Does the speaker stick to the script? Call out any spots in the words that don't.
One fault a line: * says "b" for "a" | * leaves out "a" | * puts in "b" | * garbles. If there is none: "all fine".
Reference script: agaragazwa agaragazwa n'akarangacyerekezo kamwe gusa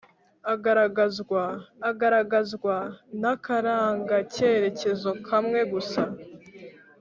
all fine